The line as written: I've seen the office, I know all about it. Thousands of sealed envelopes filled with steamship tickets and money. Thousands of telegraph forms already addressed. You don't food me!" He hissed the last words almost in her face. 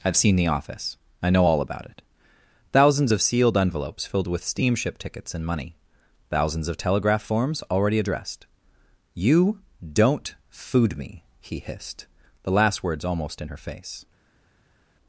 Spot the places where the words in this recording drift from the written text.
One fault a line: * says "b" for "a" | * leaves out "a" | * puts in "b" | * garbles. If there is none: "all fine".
all fine